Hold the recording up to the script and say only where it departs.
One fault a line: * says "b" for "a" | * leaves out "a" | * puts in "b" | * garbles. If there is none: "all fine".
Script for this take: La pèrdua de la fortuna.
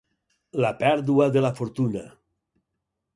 all fine